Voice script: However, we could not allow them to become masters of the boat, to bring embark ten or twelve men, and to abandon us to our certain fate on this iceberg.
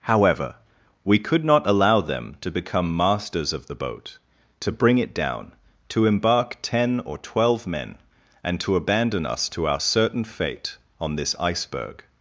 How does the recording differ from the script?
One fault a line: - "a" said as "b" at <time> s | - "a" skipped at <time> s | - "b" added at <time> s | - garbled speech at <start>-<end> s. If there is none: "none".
- "it down to" added at 5.0 s